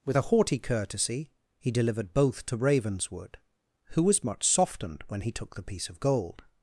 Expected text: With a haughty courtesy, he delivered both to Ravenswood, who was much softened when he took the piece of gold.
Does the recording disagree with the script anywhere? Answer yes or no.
no